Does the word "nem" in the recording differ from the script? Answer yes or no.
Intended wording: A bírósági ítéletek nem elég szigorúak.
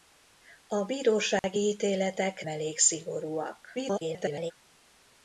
yes